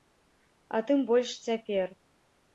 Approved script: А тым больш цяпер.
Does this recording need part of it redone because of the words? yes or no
no